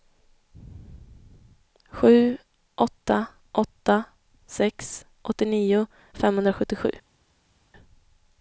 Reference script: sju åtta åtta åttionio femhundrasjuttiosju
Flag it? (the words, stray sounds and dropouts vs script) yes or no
yes